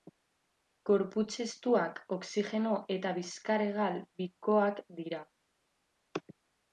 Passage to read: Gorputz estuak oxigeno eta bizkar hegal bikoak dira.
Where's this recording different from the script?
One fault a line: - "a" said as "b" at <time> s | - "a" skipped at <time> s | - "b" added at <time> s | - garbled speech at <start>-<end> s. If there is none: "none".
none